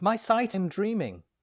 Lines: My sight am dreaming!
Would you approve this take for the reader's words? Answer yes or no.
yes